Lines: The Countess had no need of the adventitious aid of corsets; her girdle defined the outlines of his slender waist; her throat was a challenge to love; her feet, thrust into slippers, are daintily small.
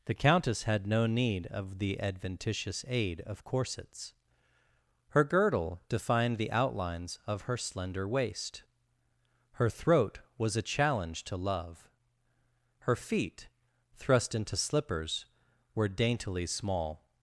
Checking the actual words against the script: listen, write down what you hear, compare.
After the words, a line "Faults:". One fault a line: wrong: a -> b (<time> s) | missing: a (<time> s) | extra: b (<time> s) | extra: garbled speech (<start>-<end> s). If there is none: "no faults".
The Countess had no need of the adventitious aid of corsets; her girdle defined the outlines of her slender waist; her throat was a challenge to love; her feet, thrust into slippers, were daintily small.
Faults:
wrong: his -> her (7.4 s)
wrong: are -> were (15.7 s)